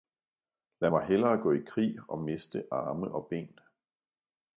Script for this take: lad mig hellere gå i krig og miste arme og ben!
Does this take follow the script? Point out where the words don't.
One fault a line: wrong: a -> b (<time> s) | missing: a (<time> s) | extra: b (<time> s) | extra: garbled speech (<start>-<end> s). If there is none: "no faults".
no faults